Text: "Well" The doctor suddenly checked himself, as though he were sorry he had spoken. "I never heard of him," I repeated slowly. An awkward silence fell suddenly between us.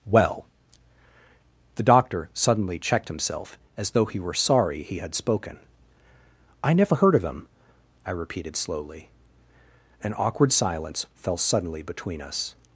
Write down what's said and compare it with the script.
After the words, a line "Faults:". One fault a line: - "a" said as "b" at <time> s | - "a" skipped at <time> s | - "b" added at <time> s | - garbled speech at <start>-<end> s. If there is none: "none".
"Well" The doctor suddenly checked himself, as though he were sorry he had spoken. "I never heard of him," I repeated slowly. An awkward silence fell suddenly between us.
Faults:
none